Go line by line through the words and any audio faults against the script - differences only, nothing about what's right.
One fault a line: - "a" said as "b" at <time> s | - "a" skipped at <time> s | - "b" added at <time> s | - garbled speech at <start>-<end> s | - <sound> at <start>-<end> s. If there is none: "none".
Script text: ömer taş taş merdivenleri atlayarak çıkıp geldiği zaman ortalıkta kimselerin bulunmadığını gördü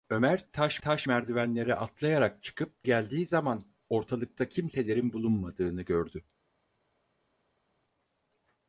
none